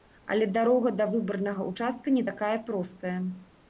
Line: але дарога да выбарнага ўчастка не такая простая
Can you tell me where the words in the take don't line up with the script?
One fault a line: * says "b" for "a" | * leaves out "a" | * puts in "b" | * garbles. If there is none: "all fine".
all fine